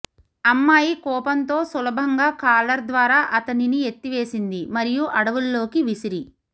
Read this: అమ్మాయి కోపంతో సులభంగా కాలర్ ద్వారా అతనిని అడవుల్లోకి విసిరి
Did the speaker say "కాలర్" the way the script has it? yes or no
yes